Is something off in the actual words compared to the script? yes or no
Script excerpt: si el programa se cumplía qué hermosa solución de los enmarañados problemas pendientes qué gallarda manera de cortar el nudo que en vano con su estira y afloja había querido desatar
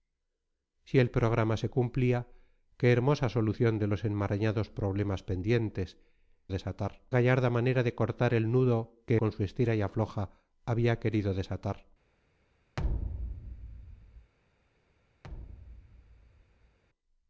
yes